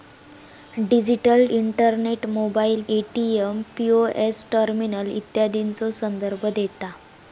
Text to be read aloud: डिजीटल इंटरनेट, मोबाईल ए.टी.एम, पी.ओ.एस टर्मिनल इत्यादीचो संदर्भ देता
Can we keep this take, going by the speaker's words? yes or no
yes